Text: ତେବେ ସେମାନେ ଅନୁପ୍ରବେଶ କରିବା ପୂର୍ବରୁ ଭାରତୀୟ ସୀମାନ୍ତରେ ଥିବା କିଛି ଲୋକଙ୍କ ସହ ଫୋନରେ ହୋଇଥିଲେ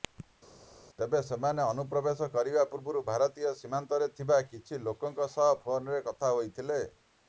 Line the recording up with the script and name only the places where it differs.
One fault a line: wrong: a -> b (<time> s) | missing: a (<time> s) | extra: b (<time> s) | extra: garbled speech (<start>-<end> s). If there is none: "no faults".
extra: କଥା (6.1 s)